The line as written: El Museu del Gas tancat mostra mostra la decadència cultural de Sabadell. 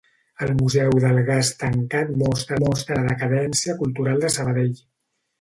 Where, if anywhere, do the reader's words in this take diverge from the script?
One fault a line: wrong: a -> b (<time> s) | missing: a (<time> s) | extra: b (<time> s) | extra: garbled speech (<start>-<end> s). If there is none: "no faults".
no faults